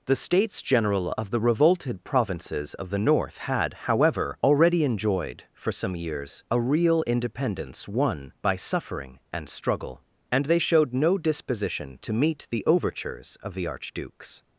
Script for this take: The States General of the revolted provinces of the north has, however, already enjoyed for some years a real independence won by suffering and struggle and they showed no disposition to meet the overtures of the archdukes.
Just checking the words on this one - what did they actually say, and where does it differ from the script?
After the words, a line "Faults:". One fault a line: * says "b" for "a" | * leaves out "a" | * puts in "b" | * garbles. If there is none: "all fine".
The States General of the revolted provinces of the north had, however, already enjoyed for some years a real independence won by suffering and struggle and they showed no disposition to meet the overtures of the archdukes.
Faults:
* says "had" for "has"